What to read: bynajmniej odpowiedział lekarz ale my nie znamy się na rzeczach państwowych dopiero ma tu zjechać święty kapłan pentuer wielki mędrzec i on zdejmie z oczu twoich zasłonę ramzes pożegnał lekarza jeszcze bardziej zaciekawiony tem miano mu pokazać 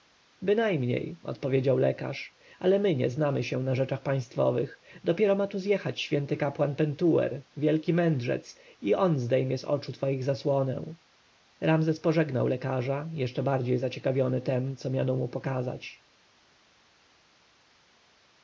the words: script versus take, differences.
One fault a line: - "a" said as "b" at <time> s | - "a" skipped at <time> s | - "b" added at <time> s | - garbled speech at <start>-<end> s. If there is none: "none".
- "co" added at 14.8 s